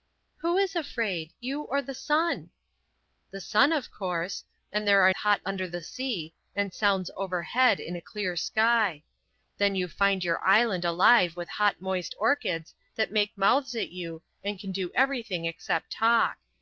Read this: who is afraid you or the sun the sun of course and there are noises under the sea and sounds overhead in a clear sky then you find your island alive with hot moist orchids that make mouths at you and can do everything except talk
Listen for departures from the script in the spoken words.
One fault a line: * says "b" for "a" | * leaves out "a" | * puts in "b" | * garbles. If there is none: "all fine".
* says "hot" for "noises"